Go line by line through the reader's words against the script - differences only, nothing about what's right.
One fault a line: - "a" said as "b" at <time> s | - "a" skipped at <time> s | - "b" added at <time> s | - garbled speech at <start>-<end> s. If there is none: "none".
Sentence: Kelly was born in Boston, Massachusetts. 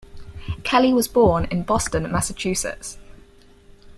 none